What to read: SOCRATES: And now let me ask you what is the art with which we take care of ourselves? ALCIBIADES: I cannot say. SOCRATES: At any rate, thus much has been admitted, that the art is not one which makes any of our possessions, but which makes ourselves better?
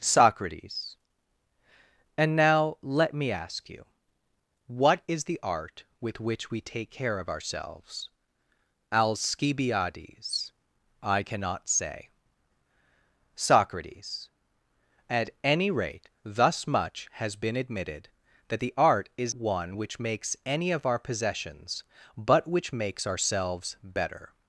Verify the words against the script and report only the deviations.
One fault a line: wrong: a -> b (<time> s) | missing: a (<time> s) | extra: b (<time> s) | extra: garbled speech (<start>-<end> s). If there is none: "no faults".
missing: not (19.4 s)